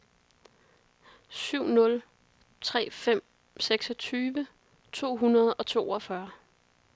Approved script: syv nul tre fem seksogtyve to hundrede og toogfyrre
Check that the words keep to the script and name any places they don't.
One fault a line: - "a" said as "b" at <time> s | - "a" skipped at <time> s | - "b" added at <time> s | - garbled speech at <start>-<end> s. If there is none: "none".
none